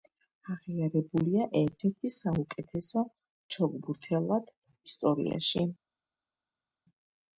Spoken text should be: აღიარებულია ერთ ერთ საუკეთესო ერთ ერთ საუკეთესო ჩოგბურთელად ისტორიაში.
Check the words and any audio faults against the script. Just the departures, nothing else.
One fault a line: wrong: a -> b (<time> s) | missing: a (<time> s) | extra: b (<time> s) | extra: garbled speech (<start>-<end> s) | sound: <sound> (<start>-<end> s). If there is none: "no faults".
missing: ერთ ერთ საუკეთესო (3.0 s)